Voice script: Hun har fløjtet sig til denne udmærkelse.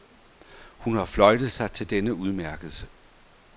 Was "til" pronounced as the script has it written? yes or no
yes